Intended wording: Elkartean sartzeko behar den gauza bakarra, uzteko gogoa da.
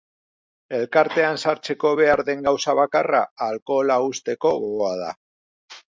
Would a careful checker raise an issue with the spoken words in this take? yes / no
yes